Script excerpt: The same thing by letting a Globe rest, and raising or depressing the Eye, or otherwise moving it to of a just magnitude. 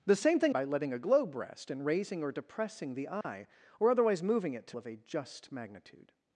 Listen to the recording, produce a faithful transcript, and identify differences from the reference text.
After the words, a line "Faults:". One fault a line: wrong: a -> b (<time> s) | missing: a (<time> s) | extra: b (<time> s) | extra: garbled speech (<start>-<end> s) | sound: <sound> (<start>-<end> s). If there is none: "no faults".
The same thing by letting a Globe rest, and raising or depressing the Eye, or otherwise moving it to of a just magnitude.
Faults:
sound: dropout (3.2-3.2 s)